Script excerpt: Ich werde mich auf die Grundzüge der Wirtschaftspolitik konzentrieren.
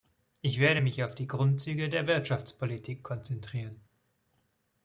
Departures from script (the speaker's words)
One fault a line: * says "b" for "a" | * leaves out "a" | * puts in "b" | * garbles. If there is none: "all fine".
all fine